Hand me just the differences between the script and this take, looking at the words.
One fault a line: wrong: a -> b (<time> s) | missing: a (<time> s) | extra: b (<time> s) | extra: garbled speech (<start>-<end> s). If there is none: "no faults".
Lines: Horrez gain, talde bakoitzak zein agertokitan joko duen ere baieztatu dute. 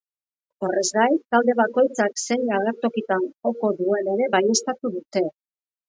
no faults